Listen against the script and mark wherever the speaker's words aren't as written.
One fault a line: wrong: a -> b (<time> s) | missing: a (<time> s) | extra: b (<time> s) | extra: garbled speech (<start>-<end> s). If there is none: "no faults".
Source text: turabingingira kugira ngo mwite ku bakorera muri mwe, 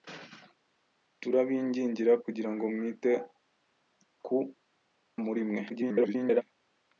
missing: bakorera (4.4 s)
extra: garbled speech (5.7-6.4 s)